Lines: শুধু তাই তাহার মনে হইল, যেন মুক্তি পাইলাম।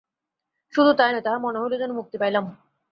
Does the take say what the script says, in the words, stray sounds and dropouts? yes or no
no